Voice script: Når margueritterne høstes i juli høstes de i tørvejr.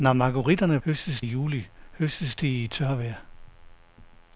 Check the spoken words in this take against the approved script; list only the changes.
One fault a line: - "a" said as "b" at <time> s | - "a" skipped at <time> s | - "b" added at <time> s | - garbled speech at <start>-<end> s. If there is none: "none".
none